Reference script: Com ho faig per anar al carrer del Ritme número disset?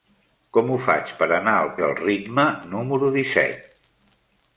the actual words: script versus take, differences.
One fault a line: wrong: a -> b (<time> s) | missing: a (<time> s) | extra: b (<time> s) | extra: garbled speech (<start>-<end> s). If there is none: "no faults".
missing: carrer (1.7 s)